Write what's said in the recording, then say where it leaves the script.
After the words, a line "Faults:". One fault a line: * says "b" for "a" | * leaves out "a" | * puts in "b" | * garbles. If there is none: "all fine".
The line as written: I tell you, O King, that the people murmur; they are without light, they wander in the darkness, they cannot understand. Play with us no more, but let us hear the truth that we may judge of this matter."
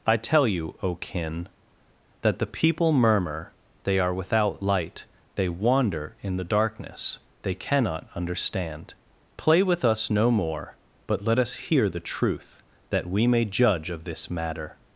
I tell you, O Kin, that the people murmur; they are without light, they wander in the darkness, they cannot understand. Play with us no more, but let us hear the truth that we may judge of this matter."
Faults:
* says "Kin" for "King"